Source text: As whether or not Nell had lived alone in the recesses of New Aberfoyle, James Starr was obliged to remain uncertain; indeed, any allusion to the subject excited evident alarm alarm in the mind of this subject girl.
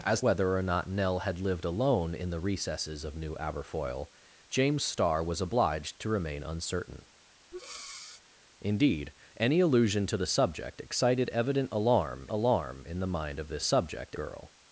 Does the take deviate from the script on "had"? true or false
false